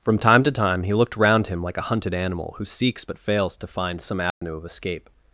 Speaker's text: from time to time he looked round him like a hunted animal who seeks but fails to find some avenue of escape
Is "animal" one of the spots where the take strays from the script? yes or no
no